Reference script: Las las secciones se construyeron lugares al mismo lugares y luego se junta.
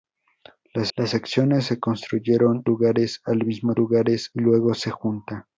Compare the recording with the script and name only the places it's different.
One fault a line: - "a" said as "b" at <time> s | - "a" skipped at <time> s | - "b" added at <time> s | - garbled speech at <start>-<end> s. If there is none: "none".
none